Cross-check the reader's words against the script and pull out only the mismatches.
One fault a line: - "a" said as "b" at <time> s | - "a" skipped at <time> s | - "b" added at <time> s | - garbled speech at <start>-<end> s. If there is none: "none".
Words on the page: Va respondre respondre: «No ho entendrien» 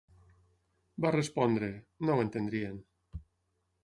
- "respondre" skipped at 1.7 s